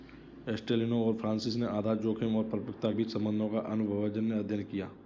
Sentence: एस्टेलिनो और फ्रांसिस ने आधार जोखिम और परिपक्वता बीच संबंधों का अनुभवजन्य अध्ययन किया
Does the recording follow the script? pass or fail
pass